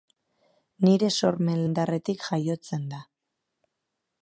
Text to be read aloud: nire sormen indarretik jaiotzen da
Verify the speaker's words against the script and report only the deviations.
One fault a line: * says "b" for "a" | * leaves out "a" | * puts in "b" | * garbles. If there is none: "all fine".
all fine